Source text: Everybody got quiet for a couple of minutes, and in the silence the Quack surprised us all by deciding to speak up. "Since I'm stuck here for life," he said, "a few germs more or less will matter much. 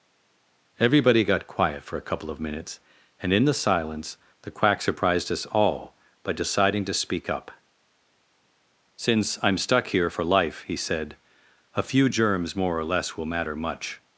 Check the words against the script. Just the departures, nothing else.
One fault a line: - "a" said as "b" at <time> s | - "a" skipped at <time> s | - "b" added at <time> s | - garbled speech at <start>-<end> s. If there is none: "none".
none